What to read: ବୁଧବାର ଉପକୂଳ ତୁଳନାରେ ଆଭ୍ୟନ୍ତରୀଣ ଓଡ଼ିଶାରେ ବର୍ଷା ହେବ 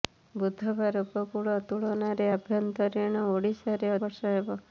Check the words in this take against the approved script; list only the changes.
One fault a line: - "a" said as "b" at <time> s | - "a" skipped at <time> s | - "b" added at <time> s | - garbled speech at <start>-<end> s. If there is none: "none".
none